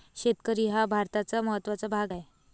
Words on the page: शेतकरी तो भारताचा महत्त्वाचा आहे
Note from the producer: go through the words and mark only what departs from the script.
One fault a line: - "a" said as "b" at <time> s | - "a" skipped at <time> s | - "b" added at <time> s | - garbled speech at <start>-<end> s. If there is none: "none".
- "तो" said as "हा" at 0.7 s
- "भाग" added at 1.9 s